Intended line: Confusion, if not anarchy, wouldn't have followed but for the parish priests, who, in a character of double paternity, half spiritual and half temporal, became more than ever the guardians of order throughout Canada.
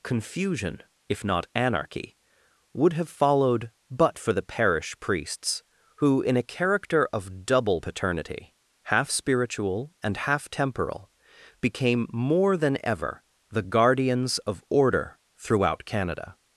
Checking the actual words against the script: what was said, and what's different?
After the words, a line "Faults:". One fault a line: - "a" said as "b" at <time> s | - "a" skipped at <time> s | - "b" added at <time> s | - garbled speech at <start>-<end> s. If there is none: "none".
Confusion, if not anarchy, would have followed but for the parish priests, who, in a character of double paternity, half spiritual and half temporal, became more than ever the guardians of order throughout Canada.
Faults:
- "wouldn't" said as "would" at 2.7 s